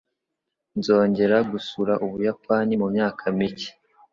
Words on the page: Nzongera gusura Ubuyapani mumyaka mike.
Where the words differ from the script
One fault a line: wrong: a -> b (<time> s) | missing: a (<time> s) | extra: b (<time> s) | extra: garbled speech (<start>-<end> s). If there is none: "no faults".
no faults